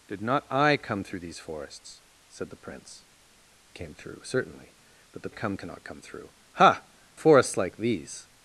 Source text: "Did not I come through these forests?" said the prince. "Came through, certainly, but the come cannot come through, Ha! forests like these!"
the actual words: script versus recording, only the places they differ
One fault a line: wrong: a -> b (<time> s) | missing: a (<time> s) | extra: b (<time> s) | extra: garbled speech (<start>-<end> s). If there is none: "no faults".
no faults